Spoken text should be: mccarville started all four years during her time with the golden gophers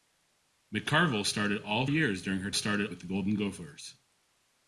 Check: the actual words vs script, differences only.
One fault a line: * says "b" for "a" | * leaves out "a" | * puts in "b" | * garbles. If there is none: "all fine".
* leaves out "four"
* says "started" for "time"